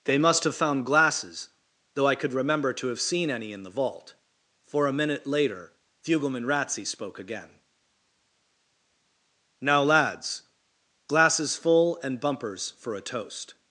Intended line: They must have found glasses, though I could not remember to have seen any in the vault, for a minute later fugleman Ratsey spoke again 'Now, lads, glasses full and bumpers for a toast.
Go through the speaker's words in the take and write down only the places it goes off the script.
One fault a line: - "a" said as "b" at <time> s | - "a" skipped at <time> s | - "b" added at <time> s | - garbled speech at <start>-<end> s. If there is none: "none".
- "not" skipped at 2.3 s